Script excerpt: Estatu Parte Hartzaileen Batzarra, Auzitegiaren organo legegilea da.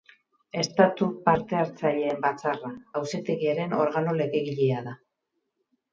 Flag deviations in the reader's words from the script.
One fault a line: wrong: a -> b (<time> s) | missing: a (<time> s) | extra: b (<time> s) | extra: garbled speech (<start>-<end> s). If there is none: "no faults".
no faults